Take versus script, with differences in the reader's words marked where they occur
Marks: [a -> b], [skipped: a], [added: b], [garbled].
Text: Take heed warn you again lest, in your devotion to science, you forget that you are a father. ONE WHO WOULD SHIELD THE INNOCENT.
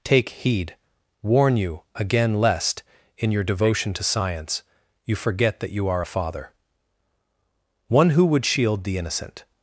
Take heed warn you again lest, in your devotion to science, you forget that you are a father. ONE WHO WOULD SHIELD THE INNOCENT.